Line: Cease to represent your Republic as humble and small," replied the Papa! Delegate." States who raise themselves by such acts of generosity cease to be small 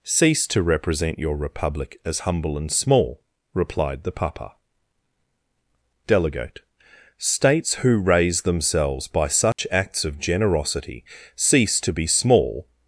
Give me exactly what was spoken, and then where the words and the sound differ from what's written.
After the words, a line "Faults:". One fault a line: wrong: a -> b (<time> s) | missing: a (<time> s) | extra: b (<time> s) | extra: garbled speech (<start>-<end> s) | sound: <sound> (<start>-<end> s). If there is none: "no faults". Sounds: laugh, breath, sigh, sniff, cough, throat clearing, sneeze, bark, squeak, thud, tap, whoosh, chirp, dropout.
Cease to represent your Republic as humble and small," replied the Papa! Delegate." States who raise themselves by such acts of generosity cease to be small
Faults:
sound: dropout (9.5-9.6 s)